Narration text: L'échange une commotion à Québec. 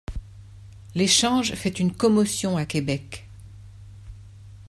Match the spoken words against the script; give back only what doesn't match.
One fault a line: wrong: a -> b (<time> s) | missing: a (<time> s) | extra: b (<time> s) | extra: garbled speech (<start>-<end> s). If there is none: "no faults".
extra: fait (1.5 s)